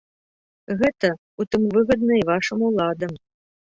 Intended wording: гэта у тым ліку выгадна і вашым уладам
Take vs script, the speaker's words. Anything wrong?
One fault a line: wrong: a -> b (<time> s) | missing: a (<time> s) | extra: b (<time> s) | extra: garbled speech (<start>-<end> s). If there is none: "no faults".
missing: ліку (1.7 s)